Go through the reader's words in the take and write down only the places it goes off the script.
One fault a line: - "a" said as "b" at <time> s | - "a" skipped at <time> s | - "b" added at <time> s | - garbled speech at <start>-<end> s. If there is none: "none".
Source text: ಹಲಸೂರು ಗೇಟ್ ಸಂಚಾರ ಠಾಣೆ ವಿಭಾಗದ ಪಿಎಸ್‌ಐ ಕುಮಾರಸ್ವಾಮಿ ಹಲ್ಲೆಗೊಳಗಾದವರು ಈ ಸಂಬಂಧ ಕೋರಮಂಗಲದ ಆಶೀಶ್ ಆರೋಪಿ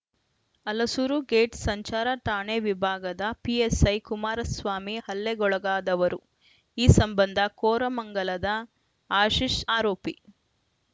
none